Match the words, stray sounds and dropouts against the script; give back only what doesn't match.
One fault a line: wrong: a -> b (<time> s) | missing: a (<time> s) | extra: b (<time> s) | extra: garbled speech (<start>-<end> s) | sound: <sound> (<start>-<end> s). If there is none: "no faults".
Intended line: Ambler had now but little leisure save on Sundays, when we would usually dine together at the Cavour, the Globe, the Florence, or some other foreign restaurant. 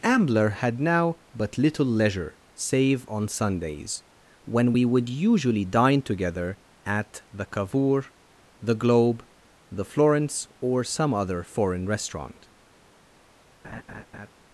sound: laugh (13.6-14.3 s)